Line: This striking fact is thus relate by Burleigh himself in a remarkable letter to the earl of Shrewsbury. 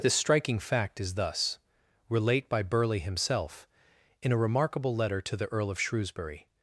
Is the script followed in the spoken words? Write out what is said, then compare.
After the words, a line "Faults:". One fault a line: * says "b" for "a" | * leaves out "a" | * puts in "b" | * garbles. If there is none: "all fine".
This striking fact is thus relate by Burleigh himself in a remarkable letter to the earl of Shrewsbury.
Faults:
all fine